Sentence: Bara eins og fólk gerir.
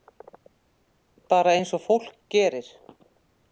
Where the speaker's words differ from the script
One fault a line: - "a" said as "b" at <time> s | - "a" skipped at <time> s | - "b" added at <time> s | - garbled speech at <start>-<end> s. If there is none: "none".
none